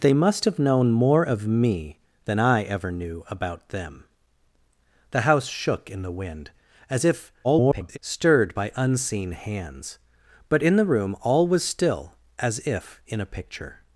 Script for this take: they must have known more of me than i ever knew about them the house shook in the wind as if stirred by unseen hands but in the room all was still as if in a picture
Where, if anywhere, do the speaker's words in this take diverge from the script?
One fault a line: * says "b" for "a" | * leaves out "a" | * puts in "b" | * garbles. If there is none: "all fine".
* garbles